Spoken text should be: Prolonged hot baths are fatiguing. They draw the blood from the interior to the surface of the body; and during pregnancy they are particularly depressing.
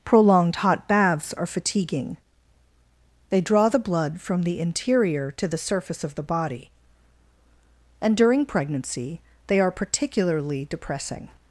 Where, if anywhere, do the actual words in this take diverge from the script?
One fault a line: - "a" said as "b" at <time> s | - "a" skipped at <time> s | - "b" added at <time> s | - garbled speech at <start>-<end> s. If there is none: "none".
none